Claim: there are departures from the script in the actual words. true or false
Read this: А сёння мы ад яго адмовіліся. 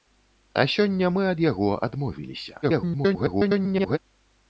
true